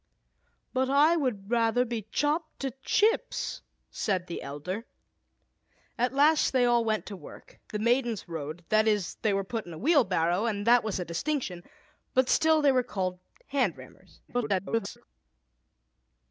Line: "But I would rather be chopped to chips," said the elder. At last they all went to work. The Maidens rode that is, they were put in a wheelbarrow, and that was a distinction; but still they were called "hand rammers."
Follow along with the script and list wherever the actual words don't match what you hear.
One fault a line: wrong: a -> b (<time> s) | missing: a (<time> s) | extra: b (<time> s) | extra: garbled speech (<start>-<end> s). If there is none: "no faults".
extra: garbled speech (14.3-15.0 s)